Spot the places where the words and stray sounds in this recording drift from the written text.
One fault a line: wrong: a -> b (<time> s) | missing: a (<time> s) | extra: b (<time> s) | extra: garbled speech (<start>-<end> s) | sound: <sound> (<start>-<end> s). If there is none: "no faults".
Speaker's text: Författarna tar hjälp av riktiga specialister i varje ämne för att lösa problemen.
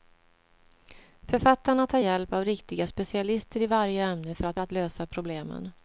extra: att (4.6 s)